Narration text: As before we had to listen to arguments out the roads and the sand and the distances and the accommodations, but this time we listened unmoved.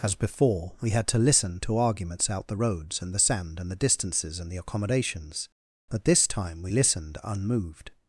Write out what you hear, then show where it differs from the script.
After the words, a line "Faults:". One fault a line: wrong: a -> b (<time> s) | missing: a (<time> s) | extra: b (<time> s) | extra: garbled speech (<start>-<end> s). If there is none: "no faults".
As before we had to listen to arguments out the roads and the sand and the distances and the accommodations, but this time we listened unmoved.
Faults:
no faults